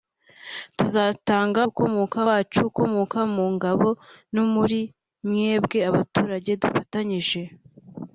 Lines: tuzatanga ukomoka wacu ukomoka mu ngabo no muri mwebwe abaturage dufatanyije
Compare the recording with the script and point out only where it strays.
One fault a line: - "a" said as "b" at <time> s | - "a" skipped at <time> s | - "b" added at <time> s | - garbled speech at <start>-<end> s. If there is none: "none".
none